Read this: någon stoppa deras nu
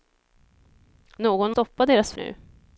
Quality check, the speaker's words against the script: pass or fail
pass